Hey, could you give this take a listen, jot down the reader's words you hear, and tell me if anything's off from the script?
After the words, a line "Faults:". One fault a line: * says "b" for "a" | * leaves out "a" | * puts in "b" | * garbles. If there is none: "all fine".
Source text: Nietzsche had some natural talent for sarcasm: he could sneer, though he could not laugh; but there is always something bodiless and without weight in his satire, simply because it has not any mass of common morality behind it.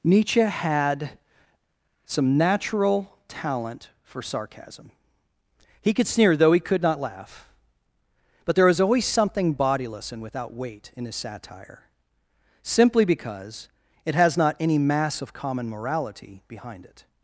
Nietzsche had some natural talent for sarcasm: he could sneer, though he could not laugh; but there was always something bodiless and without weight in his satire, simply because it has not any mass of common morality behind it.
Faults:
* says "was" for "is"